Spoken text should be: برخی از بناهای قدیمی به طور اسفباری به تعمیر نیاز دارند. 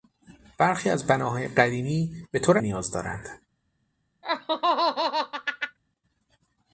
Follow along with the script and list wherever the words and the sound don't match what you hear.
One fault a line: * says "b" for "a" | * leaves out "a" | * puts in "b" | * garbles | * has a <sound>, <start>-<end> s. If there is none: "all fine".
* leaves out "اسفباری به تعمیر"
* has a laugh, 4.2-5.8 s